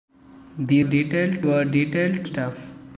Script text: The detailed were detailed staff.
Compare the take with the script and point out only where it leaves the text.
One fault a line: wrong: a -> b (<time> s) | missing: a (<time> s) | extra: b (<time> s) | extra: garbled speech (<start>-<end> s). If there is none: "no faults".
no faults